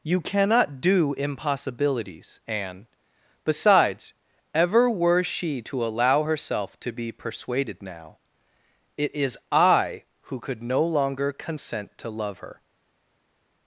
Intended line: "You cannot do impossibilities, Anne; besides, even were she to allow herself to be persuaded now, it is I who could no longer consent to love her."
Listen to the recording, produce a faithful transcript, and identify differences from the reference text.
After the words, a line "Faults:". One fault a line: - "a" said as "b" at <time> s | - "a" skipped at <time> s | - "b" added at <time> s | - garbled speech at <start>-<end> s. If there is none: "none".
"You cannot do impossibilities, Anne; besides, ever were she to allow herself to be persuaded now, it is I who could no longer consent to love her."
Faults:
- "even" said as "ever" at 4.5 s